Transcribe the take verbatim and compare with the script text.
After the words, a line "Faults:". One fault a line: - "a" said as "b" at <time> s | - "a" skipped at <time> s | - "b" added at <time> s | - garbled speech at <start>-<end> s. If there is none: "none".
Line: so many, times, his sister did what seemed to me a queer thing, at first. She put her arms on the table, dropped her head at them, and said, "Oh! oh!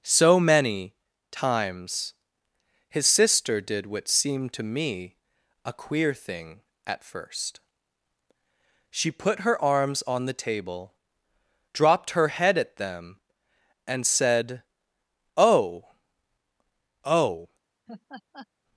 so many, times, his sister did what seemed to me a queer thing, at first. She put her arms on the table, dropped her head at them, and said, "Oh! oh!
Faults:
none